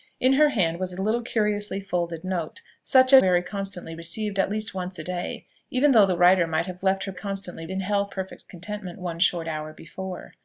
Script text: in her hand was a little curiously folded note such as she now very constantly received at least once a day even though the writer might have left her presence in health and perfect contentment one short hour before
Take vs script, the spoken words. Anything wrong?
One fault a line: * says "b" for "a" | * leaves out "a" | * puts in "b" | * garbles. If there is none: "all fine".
* leaves out "she now"
* says "constantly" for "presence"
* leaves out "and"